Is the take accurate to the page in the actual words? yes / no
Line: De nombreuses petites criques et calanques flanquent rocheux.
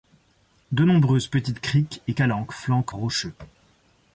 yes